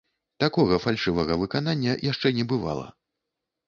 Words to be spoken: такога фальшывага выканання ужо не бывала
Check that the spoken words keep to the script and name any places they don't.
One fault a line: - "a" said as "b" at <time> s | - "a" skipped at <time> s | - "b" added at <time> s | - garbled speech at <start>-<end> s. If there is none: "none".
- "ужо" said as "яшчэ" at 2.1 s